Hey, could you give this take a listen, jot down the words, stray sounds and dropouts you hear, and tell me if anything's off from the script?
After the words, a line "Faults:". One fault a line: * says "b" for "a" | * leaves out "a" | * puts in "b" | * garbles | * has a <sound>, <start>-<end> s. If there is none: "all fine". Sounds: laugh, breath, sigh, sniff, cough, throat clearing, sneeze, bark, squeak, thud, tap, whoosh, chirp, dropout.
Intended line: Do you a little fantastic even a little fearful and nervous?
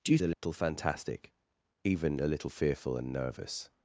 Do you a little fantastic even a little fearful and nervous?
Faults:
* has a dropout, 0.3-0.4 s